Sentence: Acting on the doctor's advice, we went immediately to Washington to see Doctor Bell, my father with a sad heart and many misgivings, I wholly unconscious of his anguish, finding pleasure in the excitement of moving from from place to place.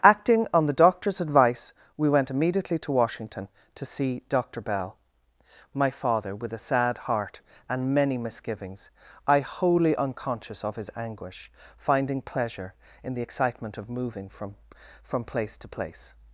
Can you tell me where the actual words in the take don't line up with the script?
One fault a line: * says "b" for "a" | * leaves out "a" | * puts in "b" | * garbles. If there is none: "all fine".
all fine